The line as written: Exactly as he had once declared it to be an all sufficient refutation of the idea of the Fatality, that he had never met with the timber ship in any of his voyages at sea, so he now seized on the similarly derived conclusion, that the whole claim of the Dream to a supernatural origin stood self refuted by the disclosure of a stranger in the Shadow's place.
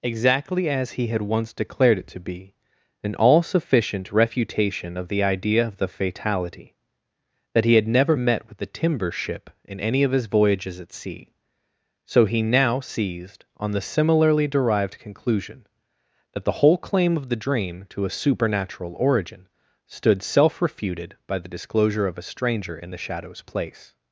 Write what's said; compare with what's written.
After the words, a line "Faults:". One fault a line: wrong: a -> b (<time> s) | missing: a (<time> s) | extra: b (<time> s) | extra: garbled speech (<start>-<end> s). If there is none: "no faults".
Exactly as he had once declared it to be an all sufficient refutation of the idea of the Fatality, that he had never met with the timber ship in any of his voyages at sea, so he now seized on the similarly derived conclusion, that the whole claim of the Dream to a supernatural origin stood self refuted by the disclosure of a stranger in the Shadow's place.
Faults:
no faults